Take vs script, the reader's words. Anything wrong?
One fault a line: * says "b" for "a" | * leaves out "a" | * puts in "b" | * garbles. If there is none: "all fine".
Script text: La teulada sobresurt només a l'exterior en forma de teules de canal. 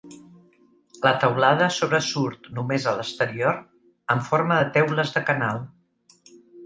all fine